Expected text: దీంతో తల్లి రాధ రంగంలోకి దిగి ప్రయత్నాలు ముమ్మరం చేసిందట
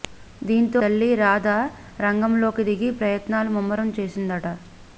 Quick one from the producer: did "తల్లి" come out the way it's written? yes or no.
yes